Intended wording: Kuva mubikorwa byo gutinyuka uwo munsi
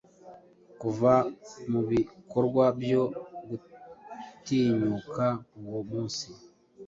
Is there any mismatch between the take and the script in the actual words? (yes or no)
no